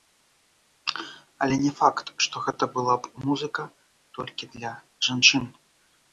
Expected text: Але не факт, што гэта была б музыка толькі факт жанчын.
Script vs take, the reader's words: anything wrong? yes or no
yes